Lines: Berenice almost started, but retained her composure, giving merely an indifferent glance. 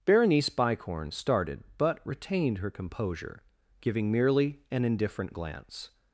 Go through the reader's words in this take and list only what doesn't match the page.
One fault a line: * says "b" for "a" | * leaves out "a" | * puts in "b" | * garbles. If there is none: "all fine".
* says "bicorn" for "almost"